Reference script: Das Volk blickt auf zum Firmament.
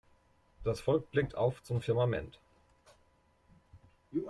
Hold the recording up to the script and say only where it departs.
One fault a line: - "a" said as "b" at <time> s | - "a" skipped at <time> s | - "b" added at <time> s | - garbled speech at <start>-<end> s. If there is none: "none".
none